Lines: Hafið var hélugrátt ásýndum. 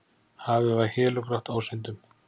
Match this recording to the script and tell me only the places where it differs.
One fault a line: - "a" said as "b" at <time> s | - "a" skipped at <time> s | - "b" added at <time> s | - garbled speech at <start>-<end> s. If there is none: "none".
none